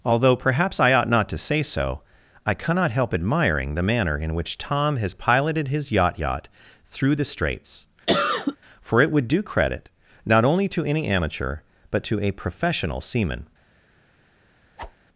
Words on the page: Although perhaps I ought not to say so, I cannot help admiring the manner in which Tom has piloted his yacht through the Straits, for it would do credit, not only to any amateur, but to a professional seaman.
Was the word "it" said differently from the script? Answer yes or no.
no